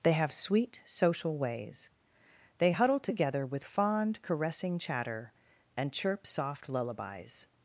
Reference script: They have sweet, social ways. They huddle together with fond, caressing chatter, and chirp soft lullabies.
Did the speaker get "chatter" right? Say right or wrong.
right